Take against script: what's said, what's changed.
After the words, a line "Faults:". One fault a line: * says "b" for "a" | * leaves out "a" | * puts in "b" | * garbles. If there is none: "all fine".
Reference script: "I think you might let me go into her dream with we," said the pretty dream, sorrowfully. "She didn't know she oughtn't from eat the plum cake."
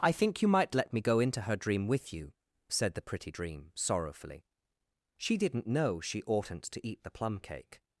"I think you might let me go into her dream with you," said the pretty dream, sorrowfully. "She didn't know she oughtn't to eat the plum cake."
Faults:
* says "you" for "we"
* says "to" for "from"